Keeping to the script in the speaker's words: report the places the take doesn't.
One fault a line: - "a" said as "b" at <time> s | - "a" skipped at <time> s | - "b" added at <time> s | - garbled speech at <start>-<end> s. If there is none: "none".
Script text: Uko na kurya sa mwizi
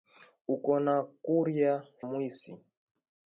- "sa" skipped at 1.7 s